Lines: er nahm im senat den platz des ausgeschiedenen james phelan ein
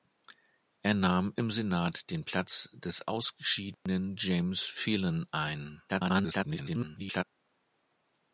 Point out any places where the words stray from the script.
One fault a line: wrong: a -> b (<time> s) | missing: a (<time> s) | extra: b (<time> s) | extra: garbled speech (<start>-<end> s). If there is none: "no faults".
extra: garbled speech (5.9-7.2 s)